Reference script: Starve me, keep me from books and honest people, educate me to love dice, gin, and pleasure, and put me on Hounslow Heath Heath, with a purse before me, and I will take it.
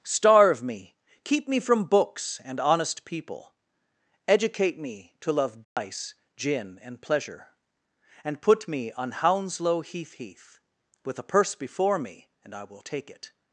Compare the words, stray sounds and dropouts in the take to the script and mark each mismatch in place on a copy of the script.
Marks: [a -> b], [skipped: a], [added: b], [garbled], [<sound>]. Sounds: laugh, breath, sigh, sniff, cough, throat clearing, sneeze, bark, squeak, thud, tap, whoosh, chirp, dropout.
Starve me, keep me from books and honest people, educate me to love dice, [dropout] gin, and pleasure, and put me on Hounslow Heath Heath, with a purse before me, and I will take it.